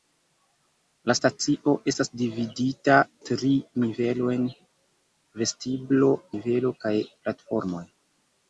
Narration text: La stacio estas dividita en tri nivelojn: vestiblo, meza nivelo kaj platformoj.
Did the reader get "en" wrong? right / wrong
wrong